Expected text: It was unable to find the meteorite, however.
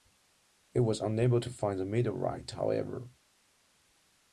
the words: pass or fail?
pass